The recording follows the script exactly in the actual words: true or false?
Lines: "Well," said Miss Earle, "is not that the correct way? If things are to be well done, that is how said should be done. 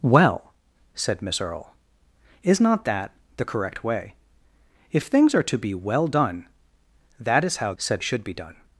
true